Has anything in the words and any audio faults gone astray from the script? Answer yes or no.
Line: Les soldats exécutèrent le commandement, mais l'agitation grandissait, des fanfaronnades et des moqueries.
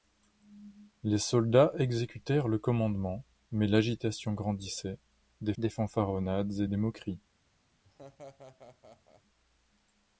yes